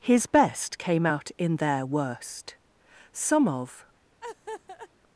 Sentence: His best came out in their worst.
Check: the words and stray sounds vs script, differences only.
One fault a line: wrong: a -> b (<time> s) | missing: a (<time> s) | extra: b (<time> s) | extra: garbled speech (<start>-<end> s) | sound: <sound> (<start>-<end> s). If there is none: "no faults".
extra: Some of (3.1 s)
sound: laugh (4.2-4.9 s)